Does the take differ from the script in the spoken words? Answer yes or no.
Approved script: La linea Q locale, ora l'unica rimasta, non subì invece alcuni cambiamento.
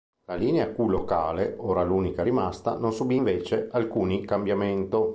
no